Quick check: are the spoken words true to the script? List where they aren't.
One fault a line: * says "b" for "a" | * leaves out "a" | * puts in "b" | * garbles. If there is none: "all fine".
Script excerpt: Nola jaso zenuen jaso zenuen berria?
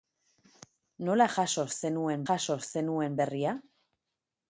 all fine